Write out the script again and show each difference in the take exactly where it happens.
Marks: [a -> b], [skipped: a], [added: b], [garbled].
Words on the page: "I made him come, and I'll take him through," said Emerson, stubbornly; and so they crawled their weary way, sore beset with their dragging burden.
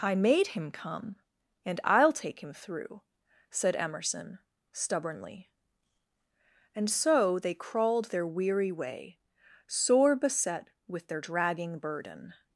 "I made him come, and I'll take him through," said Emerson, stubbornly; and so they crawled their weary way, sore beset with their dragging burden.